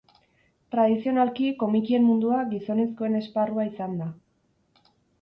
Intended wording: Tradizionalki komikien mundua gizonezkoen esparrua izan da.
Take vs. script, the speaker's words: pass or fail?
pass